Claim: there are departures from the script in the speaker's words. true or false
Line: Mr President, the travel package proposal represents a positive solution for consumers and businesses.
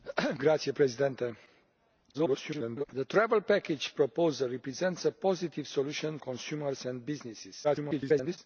true